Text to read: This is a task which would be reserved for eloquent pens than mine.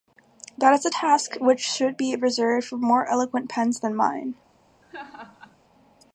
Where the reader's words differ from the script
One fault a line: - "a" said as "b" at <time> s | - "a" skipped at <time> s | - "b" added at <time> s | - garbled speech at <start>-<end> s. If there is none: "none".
- "This" said as "That" at 0.6 s
- "would" said as "should" at 1.6 s
- "more" added at 2.8 s